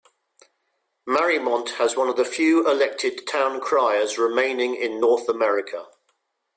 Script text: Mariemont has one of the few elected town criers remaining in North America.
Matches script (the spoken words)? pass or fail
pass